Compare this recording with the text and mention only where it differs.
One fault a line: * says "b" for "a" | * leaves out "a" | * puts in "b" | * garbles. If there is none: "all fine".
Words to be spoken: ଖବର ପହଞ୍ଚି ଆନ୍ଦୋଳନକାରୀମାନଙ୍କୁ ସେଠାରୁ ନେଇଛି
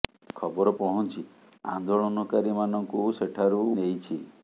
all fine